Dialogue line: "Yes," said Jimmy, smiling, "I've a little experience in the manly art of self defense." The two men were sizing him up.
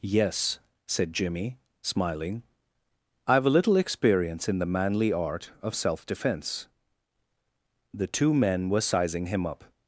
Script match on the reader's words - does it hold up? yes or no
yes